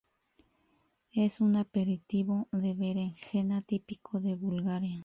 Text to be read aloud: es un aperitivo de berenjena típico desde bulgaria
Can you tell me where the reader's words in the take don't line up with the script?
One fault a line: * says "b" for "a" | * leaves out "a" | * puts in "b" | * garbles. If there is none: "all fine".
* says "de" for "desde"